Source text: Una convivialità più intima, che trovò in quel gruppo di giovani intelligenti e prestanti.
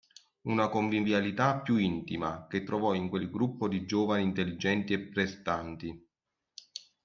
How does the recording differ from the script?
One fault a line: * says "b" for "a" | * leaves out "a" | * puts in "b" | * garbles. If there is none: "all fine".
all fine